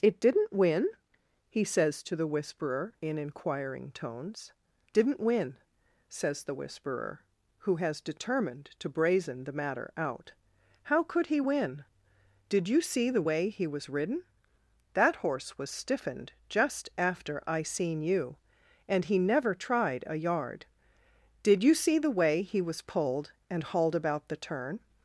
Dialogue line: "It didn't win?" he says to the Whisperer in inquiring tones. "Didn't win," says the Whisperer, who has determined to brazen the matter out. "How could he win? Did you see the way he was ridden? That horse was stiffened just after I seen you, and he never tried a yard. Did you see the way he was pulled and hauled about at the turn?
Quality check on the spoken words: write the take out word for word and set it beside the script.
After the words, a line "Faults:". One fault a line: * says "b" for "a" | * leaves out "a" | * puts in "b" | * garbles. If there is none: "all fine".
"It didn't win?" he says to the Whisperer in inquiring tones. "Didn't win," says the Whisperer, who has determined to brazen the matter out. "How could he win? Did you see the way he was ridden? That horse was stiffened just after I seen you, and he never tried a yard. Did you see the way he was pulled and hauled about the turn?
Faults:
* leaves out "at"